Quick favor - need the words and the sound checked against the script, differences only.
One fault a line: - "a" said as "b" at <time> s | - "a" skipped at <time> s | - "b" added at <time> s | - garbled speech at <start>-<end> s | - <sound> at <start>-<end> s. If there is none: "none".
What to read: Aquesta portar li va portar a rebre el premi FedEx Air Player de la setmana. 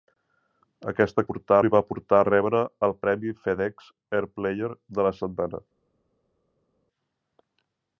none